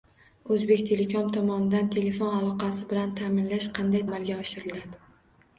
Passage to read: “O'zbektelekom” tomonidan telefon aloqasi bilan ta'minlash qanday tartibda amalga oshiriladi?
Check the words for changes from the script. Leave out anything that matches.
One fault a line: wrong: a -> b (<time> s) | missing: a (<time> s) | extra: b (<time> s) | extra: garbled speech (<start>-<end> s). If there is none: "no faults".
missing: tartibda (4.0 s)